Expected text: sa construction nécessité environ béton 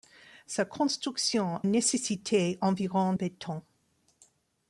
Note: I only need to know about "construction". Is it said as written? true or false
true